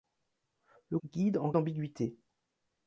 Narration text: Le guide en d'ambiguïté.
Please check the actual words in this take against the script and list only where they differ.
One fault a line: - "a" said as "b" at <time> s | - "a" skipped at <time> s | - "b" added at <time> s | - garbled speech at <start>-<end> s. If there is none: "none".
none